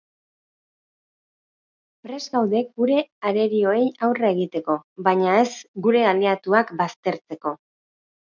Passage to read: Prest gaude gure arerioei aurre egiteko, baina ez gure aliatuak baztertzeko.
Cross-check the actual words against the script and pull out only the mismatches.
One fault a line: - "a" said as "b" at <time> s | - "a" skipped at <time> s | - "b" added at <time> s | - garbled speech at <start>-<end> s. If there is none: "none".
none